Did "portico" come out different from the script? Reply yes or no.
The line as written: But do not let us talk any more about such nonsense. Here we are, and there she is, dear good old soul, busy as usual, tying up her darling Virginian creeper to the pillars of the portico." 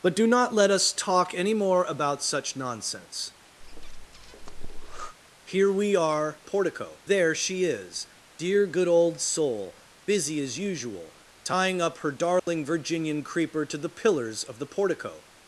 no